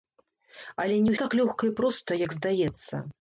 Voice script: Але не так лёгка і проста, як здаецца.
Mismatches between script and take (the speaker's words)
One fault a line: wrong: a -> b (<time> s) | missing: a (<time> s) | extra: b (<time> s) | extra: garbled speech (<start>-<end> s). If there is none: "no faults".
no faults